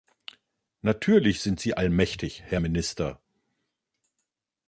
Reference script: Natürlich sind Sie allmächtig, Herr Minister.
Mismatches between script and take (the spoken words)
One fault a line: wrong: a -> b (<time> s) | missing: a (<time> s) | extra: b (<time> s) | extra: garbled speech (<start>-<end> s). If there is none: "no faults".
no faults